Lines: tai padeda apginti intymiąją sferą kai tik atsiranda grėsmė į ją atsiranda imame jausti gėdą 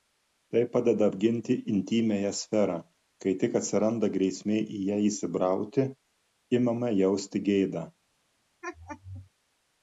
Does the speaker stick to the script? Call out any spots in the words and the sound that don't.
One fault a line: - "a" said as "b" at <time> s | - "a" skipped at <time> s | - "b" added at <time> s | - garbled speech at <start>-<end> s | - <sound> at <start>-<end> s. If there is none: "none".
- "atsiranda" said as "įsibrauti" at 5.1 s
- laugh at 8.6-9.3 s